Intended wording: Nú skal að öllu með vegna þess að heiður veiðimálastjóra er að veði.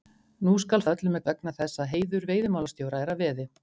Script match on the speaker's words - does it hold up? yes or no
yes